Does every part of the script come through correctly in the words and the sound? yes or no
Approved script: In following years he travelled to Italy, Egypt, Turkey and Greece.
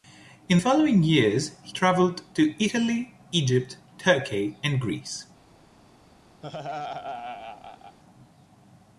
no